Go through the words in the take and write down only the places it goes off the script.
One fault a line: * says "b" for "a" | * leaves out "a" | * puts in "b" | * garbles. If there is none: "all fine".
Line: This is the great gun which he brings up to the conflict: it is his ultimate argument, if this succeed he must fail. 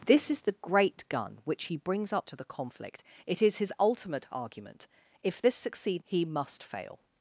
all fine